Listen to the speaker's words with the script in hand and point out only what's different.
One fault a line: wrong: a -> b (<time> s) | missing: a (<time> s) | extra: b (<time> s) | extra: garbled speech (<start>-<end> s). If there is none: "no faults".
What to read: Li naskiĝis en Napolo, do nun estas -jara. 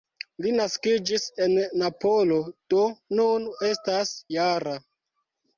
no faults